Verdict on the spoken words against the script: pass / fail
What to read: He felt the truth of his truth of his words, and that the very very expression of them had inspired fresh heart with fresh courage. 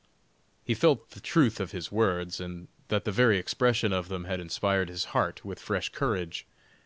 fail